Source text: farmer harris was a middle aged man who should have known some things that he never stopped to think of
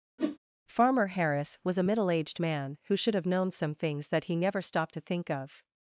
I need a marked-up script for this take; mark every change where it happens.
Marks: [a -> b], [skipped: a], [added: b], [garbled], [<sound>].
[whoosh] farmer harris was a middle aged man who should have known some things that he never stopped to think of